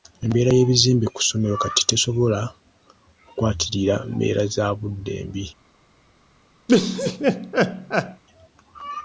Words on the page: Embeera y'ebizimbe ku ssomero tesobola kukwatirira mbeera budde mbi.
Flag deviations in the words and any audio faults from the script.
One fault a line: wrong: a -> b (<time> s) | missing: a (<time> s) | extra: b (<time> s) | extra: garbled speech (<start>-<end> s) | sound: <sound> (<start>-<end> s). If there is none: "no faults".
extra: kati (1.6 s)
extra: za (4.5 s)
sound: laugh (6.7-8.2 s)